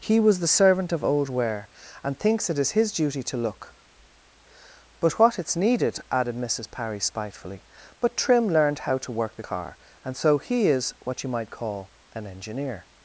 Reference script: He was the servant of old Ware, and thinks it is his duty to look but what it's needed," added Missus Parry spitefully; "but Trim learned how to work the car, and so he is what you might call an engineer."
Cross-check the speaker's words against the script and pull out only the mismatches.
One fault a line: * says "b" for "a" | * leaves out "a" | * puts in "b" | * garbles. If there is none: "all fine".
all fine